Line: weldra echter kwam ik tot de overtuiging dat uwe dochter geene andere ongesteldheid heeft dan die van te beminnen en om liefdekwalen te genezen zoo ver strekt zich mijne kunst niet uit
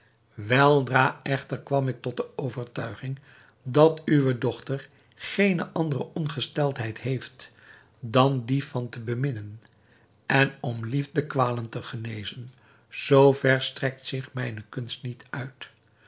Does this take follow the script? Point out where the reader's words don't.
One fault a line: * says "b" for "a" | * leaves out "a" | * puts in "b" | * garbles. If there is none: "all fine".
all fine